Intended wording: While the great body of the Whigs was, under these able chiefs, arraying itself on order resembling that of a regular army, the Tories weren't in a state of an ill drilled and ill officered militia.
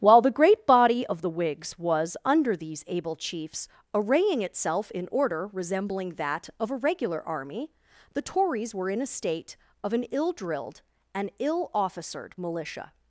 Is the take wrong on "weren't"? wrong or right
wrong